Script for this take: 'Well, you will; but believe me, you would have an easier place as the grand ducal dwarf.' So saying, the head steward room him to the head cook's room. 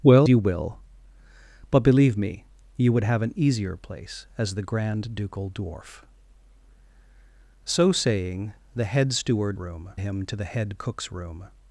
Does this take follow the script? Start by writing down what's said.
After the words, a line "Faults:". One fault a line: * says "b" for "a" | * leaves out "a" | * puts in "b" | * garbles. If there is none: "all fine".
'Well, you will; but believe me, you would have an easier place as the grand ducal dwarf.' So saying, the head steward room him to the head cook's room.
Faults:
all fine